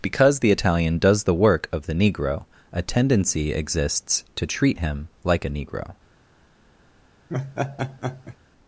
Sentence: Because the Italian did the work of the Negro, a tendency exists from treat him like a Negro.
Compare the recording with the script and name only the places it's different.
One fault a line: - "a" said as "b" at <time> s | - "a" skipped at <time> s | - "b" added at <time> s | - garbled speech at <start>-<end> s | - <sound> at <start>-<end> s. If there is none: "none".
- "did" said as "does" at 1.0 s
- "from" said as "to" at 4.3 s
- laugh at 7.3-8.4 s